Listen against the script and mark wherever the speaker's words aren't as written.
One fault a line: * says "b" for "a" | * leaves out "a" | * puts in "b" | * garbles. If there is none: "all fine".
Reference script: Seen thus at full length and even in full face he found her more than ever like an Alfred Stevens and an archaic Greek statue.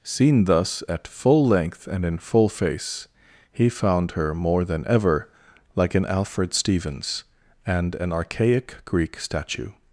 * leaves out "even"